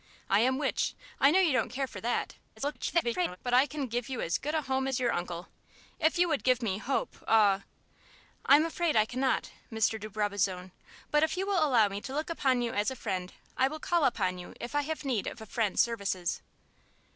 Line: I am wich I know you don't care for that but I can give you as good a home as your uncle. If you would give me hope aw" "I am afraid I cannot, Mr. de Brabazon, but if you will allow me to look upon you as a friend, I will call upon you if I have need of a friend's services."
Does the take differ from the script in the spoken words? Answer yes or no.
yes